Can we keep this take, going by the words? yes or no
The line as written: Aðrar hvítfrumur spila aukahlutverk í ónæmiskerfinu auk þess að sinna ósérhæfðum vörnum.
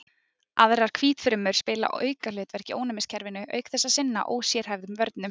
yes